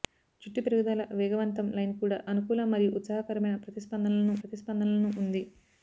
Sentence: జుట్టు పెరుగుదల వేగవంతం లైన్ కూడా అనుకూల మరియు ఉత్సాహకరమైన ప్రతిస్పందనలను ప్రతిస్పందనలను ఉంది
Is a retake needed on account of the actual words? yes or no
no